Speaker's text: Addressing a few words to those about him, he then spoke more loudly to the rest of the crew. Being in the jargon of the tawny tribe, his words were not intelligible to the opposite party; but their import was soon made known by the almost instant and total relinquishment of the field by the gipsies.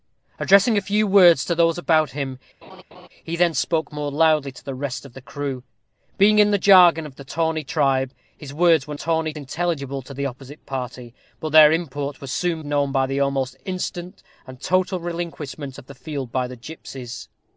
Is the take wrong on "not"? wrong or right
wrong